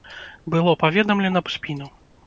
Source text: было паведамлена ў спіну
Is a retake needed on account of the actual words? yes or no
no